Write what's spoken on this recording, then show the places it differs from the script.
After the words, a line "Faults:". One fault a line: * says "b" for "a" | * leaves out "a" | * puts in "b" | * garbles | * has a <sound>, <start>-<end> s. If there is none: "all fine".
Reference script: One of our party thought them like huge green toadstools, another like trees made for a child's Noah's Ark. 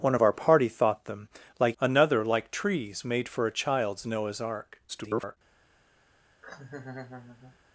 One of our party thought them like another like trees made for a child's Noah's Ark. [garbled]
Faults:
* leaves out "huge green toadstools"
* garbles
* has a laugh, 6.4-7.6 s